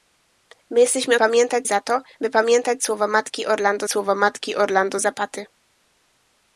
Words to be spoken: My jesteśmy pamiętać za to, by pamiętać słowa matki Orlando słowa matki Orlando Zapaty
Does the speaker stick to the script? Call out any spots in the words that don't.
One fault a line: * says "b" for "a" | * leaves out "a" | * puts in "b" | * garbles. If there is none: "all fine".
all fine